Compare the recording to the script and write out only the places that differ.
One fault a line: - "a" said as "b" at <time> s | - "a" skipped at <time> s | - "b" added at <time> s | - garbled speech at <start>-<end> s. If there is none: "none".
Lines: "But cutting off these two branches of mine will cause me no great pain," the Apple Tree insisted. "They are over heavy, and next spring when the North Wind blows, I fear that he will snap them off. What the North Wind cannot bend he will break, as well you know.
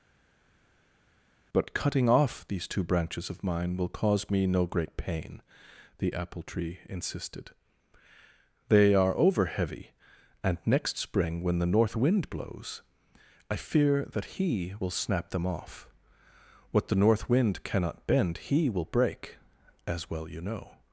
none